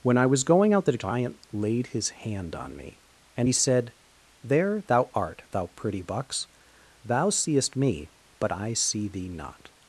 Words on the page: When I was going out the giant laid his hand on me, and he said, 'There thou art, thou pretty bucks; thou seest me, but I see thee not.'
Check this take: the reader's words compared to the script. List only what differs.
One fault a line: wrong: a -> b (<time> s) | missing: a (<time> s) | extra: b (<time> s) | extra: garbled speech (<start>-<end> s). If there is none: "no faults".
no faults